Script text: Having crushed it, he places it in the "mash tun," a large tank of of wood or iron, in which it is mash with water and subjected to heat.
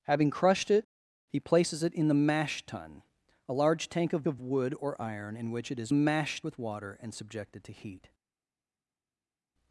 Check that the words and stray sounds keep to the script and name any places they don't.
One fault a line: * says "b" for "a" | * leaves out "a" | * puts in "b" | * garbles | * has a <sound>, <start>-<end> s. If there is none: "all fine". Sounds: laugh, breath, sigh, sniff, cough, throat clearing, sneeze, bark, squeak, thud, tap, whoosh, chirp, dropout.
all fine